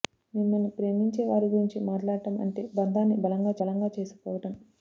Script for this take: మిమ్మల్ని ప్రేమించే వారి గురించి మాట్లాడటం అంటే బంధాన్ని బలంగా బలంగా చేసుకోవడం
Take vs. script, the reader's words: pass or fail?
pass